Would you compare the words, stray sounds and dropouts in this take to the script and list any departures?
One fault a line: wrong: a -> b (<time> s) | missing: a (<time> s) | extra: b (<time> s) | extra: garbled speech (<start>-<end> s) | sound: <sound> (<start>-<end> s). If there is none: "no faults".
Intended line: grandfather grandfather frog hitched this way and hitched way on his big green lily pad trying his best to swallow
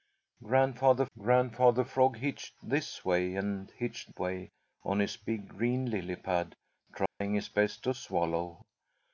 sound: dropout (7.1-7.2 s)